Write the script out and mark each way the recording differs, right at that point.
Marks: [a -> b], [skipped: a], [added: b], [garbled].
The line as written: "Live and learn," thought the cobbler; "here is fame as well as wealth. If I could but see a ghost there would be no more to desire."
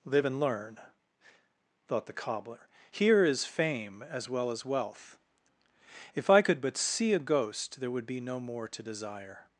"Live and learn," thought the cobbler; "here is fame as well as wealth. If I could but see a ghost there would be no more to desire."